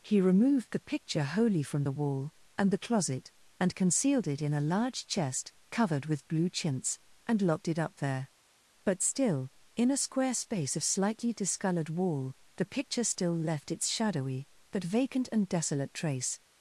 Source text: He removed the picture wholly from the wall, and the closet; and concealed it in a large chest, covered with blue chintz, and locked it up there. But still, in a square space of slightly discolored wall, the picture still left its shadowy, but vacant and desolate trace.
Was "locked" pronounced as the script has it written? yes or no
yes